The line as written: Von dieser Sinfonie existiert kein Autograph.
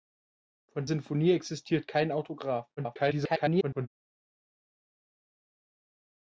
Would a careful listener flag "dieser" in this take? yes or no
yes